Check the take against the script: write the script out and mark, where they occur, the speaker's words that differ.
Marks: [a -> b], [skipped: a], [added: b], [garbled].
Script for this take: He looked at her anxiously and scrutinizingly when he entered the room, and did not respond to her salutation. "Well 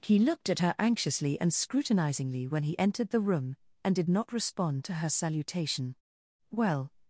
He looked at her anxiously and scrutinizingly when he entered the room, and did not respond to her salutation. "Well